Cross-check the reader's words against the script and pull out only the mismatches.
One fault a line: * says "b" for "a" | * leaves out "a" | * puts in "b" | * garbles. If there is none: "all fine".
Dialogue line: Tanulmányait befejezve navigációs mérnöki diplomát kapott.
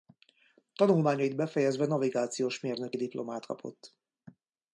all fine